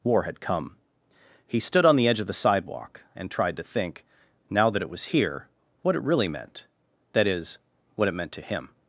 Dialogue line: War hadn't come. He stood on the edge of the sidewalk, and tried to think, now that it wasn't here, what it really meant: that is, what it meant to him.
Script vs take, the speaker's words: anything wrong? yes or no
yes